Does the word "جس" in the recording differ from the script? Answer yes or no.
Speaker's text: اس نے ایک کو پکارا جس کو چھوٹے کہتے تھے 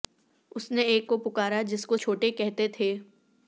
no